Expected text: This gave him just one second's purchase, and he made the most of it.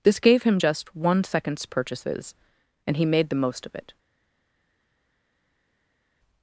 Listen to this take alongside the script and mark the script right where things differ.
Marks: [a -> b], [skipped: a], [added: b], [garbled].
This gave him just one second's [purchase, -> purchases] and he made the most of it.